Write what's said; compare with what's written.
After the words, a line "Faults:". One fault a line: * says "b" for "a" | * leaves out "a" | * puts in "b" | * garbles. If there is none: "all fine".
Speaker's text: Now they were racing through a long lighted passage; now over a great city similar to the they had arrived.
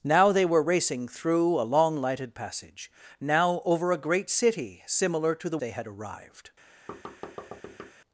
Now they were racing through a long lighted passage; now over a great city similar to the they had arrived.
Faults:
all fine